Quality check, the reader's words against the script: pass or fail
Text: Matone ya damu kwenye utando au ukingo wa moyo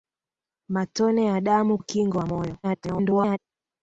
fail